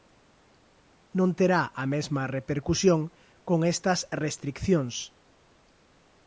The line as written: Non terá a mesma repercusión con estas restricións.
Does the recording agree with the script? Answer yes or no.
yes